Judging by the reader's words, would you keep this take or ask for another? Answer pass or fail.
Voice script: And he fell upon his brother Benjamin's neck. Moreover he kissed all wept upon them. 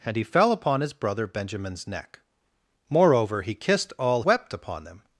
pass